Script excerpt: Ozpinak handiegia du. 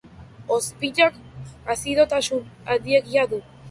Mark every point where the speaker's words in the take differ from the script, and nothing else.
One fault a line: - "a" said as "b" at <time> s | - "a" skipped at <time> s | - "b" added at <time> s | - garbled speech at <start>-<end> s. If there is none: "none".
- "azidotasun" added at 1.8 s